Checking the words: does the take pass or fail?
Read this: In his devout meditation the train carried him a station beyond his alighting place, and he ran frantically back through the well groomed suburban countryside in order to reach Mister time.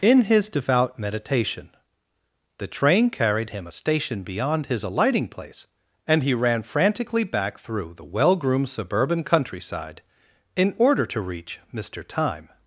pass